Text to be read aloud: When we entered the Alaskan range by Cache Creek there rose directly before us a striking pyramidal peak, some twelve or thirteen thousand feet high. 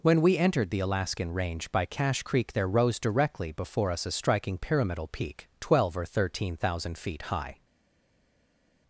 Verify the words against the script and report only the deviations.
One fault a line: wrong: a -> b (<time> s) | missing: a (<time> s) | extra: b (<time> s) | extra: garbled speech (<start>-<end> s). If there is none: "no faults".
missing: some (5.5 s)